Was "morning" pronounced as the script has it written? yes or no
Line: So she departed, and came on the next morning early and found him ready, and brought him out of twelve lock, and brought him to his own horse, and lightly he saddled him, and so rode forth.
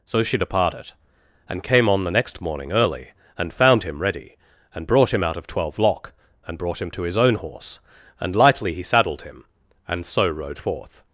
yes